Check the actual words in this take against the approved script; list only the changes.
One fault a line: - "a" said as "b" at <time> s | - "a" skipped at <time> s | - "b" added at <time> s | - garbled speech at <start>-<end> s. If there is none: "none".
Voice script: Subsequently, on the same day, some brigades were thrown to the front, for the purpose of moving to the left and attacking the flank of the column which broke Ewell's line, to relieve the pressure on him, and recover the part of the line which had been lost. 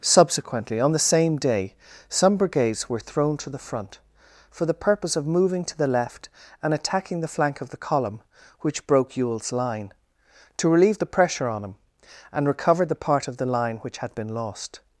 none